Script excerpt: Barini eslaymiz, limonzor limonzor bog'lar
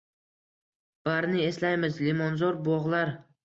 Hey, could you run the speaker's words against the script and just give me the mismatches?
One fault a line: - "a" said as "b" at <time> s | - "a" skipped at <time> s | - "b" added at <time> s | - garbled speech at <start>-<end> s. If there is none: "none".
- "limonzor" skipped at 2.6 s